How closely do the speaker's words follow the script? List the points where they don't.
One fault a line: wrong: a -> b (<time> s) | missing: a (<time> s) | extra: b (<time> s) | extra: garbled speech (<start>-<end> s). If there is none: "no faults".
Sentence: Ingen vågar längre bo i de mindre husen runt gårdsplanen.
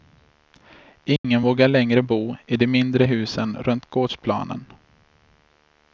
no faults